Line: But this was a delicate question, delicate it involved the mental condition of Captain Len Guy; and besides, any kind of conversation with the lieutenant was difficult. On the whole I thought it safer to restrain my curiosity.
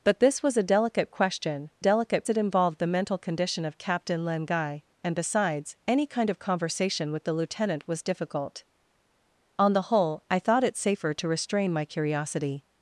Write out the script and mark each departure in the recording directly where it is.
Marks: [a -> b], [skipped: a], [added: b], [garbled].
But this was a delicate question, delicate it involved the mental condition of Captain Len Guy; and besides, any kind of conversation with the lieutenant was difficult. On the whole I thought it safer to restrain my curiosity.